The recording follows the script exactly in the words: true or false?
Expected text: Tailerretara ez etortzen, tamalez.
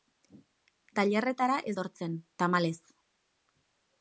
true